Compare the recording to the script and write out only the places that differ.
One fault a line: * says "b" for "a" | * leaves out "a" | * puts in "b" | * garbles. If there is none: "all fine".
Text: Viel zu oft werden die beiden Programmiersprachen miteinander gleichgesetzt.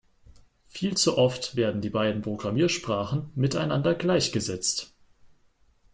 all fine